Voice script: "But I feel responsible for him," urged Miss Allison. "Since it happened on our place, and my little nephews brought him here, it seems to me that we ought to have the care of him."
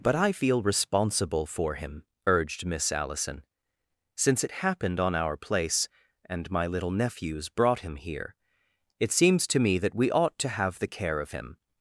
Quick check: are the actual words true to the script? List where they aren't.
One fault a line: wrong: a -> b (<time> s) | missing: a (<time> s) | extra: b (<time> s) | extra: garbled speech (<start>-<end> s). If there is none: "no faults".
no faults